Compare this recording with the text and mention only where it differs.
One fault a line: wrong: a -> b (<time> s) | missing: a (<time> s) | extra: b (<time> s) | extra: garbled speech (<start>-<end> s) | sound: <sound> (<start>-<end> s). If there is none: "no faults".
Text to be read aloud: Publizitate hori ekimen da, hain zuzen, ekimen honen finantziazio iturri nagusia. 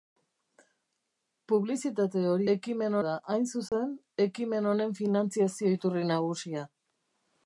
sound: dropout (3.7-3.7 s)